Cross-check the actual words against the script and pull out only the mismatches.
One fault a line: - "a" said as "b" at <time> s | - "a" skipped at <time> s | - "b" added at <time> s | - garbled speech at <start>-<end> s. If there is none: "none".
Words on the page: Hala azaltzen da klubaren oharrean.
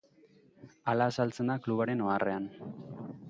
none